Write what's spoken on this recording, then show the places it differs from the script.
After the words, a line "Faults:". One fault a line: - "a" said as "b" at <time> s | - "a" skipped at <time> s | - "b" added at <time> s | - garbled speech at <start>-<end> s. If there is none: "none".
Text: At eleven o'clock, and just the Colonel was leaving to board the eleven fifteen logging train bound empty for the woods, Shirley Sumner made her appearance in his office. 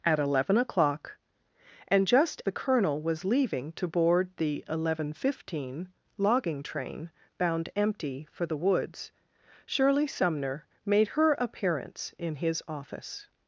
At eleven o'clock, and just the Colonel was leaving to board the eleven fifteen logging train bound empty for the woods, Shirley Sumner made her appearance in his office.
Faults:
none